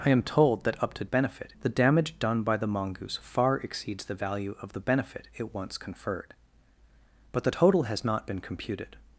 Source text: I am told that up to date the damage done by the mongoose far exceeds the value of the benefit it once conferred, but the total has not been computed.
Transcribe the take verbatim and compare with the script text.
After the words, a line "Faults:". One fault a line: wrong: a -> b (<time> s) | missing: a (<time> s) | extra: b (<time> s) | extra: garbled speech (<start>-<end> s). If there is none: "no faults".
I am told that up to benefit the damage done by the mongoose far exceeds the value of the benefit it once conferred, but the total has not been computed.
Faults:
wrong: date -> benefit (1.1 s)